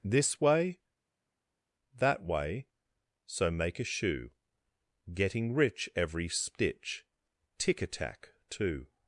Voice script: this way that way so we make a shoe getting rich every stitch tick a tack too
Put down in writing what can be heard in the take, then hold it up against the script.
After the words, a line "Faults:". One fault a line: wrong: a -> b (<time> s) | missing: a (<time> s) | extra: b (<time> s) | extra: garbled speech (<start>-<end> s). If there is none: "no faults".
this way that way so make a shoe getting rich every stitch tick a tack too
Faults:
missing: we (3.5 s)